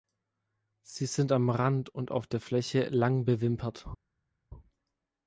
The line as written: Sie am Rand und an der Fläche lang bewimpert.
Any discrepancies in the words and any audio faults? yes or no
yes